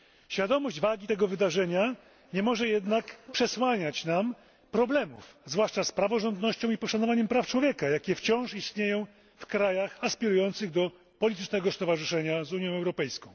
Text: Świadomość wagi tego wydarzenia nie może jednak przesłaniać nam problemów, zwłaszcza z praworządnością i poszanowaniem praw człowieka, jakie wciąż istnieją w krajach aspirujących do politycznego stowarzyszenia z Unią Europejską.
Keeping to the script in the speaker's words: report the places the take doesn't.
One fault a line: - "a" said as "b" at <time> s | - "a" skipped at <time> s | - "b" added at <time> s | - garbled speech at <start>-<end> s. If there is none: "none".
none